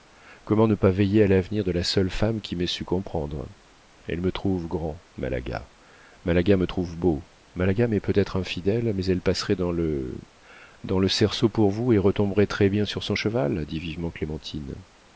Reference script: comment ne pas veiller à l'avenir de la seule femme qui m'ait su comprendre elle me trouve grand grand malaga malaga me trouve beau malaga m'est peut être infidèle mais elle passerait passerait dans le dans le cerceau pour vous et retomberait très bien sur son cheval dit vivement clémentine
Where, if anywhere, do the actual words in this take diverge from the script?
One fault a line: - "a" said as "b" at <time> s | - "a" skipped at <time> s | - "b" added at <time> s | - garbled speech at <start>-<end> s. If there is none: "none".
- "grand" skipped at 5.0 s
- "passerait" skipped at 9.6 s